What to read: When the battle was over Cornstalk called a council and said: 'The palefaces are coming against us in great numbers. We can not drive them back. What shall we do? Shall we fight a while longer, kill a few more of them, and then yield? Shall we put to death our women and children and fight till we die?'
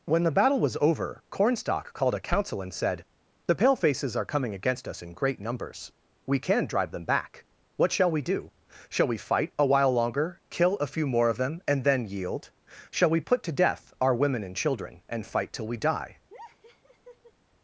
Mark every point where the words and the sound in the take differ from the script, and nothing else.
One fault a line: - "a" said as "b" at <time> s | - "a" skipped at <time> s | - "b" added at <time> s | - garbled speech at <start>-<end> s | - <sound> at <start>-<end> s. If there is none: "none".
- "not" skipped at 6.7 s
- laugh at 16.3-17.3 s